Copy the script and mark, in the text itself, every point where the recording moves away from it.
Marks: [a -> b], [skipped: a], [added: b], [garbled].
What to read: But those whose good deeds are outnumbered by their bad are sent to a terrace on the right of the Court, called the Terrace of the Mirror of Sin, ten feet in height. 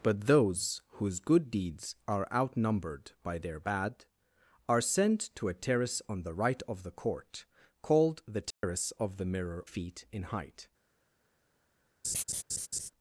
But those whose good deeds are outnumbered by their bad are sent to a terrace on the right of the Court, called the Terrace of the Mirror [skipped: of Sin, ten] feet in height.